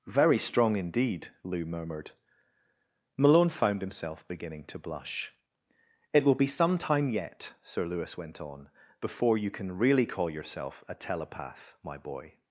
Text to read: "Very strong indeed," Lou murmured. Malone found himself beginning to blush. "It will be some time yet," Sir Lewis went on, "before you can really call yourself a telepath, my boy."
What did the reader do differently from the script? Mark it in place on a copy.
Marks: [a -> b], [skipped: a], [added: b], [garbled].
"Very strong indeed," Lou murmured. Malone found himself beginning to blush. "It will be some time yet," Sir Lewis went on, "before you can really call yourself a telepath, my boy."